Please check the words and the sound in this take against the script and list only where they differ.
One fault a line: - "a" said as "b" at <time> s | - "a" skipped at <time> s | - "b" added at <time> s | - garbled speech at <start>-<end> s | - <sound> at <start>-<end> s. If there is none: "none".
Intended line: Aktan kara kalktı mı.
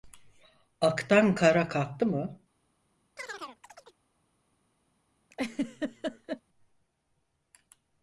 - chirp at 3.2-4.0 s
- laugh at 5.3-6.4 s